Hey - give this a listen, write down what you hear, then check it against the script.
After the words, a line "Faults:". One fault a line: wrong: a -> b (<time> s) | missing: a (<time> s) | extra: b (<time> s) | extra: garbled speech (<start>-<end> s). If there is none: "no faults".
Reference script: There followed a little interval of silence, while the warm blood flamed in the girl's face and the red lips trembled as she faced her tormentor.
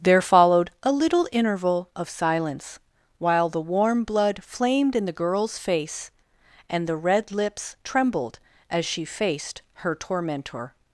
There followed a little interval of silence, while the warm blood flamed in the girl's face and the red lips trembled as she faced her tormentor.
Faults:
no faults